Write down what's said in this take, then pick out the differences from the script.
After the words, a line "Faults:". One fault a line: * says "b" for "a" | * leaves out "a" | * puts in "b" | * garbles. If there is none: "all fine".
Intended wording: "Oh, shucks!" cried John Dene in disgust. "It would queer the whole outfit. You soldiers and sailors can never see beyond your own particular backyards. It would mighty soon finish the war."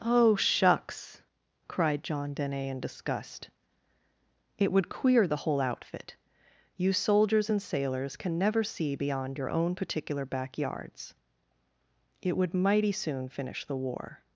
"Oh, shucks!" cried John Dene in disgust. "It would queer the whole outfit. You soldiers and sailors can never see beyond your own particular backyards. It would mighty soon finish the war."
Faults:
all fine